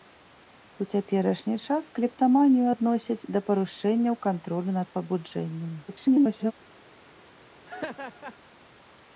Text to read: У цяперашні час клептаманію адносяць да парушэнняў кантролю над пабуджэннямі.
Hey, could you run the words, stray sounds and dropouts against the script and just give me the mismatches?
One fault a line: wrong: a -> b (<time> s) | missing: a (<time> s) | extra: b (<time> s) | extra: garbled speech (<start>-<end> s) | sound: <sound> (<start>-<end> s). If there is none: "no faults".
extra: garbled speech (5.9-6.5 s)
sound: laugh (7.7-8.4 s)